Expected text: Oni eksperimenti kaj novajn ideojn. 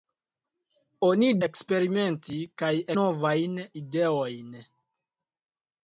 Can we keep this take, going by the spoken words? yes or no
yes